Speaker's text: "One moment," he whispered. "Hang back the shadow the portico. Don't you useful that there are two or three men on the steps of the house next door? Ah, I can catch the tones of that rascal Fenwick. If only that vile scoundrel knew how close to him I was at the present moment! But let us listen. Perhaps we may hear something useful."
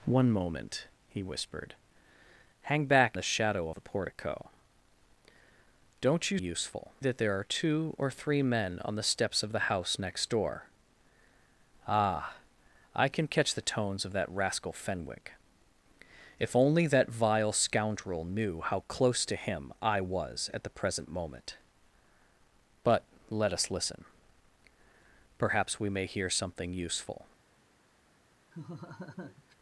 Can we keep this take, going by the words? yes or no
yes